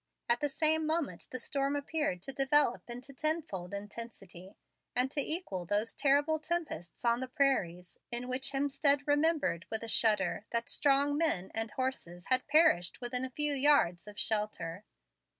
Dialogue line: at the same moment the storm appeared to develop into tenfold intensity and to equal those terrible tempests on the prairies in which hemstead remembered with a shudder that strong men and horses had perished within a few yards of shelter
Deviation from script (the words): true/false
false